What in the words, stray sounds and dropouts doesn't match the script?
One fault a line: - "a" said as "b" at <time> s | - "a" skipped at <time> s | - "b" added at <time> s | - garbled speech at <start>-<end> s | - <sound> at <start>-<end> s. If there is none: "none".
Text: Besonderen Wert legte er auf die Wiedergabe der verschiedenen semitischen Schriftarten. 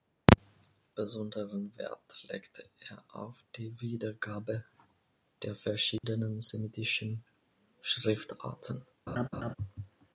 - dropout at 6.0-6.0 s
- laugh at 9.1-9.6 s